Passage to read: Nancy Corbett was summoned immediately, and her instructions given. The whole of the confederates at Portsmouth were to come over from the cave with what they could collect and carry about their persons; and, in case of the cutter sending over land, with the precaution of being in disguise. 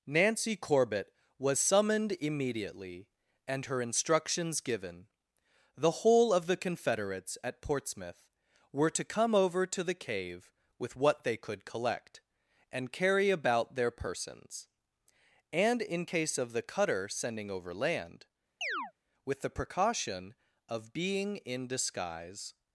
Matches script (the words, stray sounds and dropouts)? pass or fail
fail